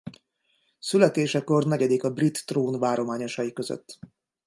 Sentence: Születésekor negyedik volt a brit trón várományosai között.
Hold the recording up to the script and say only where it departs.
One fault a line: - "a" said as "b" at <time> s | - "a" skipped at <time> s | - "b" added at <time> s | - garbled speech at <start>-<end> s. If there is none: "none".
- "volt" skipped at 2.0 s